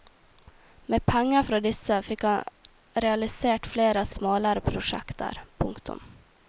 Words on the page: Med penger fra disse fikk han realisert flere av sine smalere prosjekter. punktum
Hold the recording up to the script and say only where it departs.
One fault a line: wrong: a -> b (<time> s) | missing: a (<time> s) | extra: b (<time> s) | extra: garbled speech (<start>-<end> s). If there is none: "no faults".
missing: sine (4.1 s)